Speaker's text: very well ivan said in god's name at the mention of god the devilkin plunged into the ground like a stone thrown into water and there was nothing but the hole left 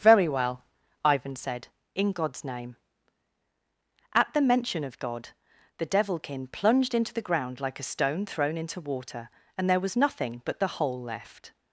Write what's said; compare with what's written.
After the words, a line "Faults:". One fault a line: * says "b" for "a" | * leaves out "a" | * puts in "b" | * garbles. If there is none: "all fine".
very well ivan said in god's name at the mention of god the devilkin plunged into the ground like a stone thrown into water and there was nothing but the hole left
Faults:
all fine